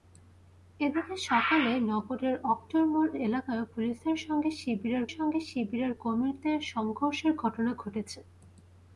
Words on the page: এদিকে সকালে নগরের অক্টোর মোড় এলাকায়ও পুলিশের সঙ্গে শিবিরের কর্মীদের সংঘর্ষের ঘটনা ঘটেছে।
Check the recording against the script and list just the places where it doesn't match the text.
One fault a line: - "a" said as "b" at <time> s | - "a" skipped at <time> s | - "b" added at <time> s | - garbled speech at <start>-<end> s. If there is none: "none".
- "সঙ্গে শিবিরের" added at 5.1 s